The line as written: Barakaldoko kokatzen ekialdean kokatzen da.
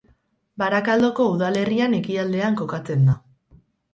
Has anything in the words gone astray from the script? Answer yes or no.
yes